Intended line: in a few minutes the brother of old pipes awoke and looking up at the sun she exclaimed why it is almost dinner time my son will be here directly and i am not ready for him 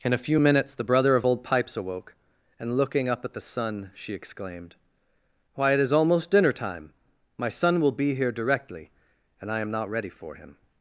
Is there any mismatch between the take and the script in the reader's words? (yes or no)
no